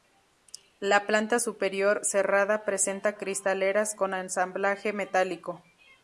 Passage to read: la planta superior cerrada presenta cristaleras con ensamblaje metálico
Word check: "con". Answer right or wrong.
right